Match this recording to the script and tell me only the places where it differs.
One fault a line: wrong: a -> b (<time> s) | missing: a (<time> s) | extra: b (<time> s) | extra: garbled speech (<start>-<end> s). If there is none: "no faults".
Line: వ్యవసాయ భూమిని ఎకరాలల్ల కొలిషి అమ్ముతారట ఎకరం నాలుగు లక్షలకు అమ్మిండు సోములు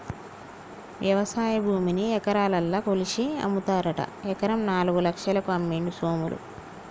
no faults